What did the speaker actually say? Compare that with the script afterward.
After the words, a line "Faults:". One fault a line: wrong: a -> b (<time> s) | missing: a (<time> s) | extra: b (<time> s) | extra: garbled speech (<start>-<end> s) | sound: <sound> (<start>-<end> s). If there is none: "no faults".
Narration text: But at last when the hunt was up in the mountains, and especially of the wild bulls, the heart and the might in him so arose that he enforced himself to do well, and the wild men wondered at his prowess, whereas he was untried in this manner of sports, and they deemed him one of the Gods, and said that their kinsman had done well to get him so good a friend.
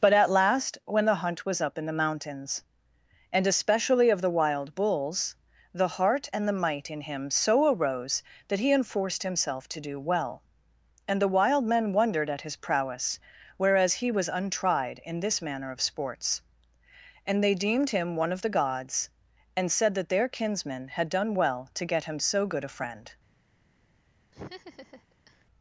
But at last when the hunt was up in the mountains, and especially of the wild bulls, the heart and the might in him so arose that he enforced himself to do well, and the wild men wondered at his prowess, whereas he was untried in this manner of sports, and they deemed him one of the Gods, and said that their kinsman had done well to get him so good a friend.
Faults:
sound: laugh (24.3-25.5 s)